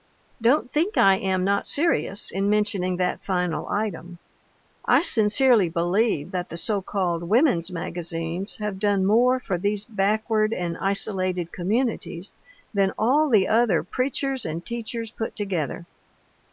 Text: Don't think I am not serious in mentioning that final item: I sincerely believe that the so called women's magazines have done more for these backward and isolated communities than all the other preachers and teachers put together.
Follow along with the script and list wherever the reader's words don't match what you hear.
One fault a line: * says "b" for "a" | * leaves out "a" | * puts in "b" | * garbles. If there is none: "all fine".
all fine